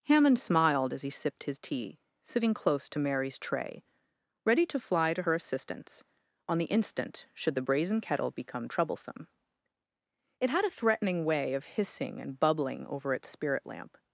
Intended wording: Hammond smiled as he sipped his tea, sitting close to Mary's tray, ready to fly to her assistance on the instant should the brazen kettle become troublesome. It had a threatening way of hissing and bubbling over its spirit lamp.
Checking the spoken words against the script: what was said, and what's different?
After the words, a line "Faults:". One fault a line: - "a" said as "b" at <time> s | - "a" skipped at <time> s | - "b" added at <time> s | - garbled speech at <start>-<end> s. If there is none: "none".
Hammond smiled as he sipped his tea, sitting close to Mary's tray, ready to fly to her assistance on the instant should the brazen kettle become troublesome. It had a threatening way of hissing and bubbling over its spirit lamp.
Faults:
none